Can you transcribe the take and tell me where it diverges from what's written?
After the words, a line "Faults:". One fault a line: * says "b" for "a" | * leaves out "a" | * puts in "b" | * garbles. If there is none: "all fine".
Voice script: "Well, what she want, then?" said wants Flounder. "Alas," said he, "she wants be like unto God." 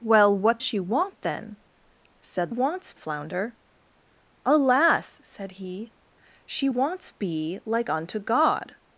"Well, what she want, then?" said wants Flounder. "Alas," said he, "she wants be like unto God."
Faults:
all fine